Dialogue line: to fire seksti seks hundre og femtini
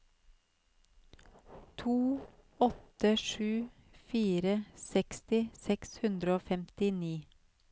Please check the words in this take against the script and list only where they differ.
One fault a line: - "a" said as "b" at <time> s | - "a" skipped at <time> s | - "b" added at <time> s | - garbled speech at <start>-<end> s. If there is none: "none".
- "åtte sju" added at 2.6 s